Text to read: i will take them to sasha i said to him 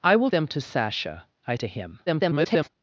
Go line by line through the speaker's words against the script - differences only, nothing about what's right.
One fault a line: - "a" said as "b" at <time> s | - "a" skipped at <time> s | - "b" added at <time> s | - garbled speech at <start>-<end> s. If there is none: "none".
- "take" skipped at 0.3 s
- "said" skipped at 1.5 s
- garbled speech at 2.1-2.7 s